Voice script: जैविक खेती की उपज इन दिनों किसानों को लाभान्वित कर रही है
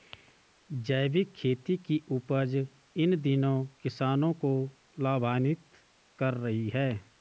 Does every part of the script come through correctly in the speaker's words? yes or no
yes